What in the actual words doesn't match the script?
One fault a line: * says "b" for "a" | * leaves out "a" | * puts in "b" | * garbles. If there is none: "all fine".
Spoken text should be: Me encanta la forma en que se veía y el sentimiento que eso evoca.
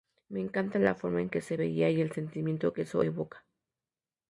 all fine